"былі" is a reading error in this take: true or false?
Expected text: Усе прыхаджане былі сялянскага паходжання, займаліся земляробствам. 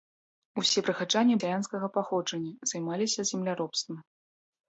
true